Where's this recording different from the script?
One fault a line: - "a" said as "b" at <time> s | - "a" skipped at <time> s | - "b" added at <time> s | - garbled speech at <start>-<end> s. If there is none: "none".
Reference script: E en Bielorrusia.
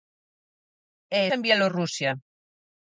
none